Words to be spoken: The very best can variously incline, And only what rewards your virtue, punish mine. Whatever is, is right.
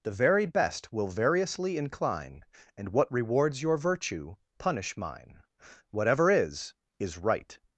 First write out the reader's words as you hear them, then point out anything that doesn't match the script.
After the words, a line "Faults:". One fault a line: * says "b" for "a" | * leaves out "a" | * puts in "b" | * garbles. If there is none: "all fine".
The very best will variously incline, And what rewards your virtue, punish mine. Whatever is, is right.
Faults:
* says "will" for "can"
* leaves out "only"